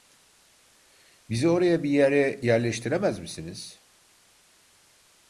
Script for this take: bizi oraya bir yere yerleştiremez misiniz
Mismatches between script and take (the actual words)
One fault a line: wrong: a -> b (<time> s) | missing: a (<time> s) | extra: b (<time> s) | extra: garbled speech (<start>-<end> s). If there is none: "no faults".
no faults